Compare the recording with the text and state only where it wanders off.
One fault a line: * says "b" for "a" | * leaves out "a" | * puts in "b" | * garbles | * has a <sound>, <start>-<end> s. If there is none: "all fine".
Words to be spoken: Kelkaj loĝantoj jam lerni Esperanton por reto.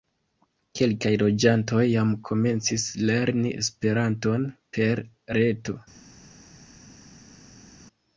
* puts in "komencis"
* says "per" for "por"